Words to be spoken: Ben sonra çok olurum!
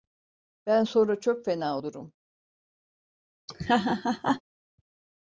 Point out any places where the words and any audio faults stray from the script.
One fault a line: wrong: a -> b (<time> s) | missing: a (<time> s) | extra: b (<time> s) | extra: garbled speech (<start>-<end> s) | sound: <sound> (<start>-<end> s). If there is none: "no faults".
extra: fena (1.5 s)
sound: laugh (3.5-4.4 s)